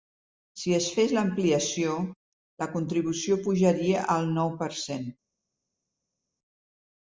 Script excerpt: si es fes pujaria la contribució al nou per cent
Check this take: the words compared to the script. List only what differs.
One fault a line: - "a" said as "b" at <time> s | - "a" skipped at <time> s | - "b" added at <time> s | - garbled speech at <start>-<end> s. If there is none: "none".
- "pujaria" said as "l'ampliació" at 1.2 s
- "pujaria" added at 3.5 s